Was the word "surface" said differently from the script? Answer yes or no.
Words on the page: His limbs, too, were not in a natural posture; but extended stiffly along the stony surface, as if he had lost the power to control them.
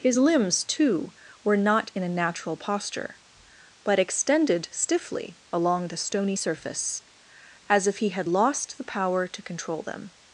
no